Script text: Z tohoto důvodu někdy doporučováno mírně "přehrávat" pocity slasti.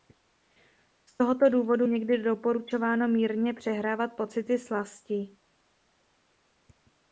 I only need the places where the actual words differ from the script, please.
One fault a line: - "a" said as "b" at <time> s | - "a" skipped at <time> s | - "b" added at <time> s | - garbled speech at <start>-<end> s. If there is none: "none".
none